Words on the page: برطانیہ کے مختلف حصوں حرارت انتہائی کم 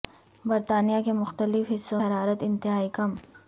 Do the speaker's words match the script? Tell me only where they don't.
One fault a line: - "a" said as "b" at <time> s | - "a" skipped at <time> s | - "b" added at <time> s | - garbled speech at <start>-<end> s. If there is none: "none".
none